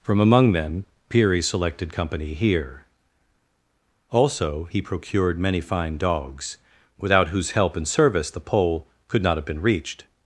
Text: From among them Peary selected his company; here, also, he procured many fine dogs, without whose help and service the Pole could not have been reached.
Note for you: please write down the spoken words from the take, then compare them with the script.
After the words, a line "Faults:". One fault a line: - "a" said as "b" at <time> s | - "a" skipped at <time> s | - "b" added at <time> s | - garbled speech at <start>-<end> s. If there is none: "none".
From among them Peary selected company; here, also, he procured many fine dogs, without whose help and service the Pole could not have been reached.
Faults:
- "his" skipped at 1.9 s